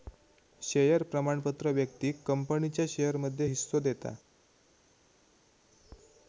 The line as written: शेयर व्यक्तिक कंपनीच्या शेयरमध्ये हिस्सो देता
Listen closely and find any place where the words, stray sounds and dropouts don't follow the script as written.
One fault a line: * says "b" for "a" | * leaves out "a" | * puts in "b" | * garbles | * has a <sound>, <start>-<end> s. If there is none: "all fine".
* puts in "प्रमाणपत्र"